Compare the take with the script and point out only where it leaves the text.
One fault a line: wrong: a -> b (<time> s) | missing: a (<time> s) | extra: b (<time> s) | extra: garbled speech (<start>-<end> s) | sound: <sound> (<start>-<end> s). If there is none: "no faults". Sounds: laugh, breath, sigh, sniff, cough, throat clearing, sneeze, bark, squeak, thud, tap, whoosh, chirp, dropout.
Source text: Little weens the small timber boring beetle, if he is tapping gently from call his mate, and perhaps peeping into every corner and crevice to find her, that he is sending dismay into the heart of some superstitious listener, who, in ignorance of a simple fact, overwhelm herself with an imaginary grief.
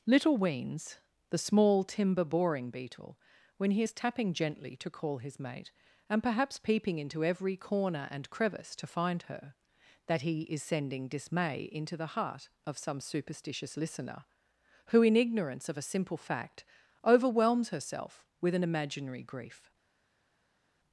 wrong: if -> when (3.6 s)
wrong: from -> to (4.8 s)
wrong: overwhelm -> overwhelms (17.1 s)